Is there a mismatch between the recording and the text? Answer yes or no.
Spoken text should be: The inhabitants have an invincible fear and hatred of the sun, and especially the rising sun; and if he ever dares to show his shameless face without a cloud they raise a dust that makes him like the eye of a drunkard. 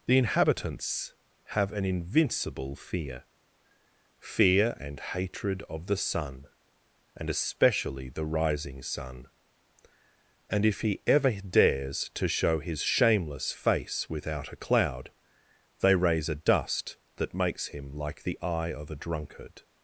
yes